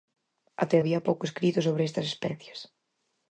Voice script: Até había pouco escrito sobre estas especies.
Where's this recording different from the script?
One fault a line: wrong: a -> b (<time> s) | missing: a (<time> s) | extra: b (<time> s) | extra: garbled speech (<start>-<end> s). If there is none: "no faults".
no faults